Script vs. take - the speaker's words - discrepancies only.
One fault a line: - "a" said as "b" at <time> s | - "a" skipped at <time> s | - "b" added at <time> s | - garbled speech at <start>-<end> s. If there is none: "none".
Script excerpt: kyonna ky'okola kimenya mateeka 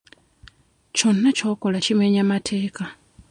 none